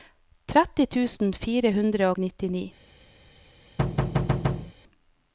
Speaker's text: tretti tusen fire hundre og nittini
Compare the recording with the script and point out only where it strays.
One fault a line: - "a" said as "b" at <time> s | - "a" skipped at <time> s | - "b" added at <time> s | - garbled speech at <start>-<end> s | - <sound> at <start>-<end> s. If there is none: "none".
- thud at 3.8-4.7 s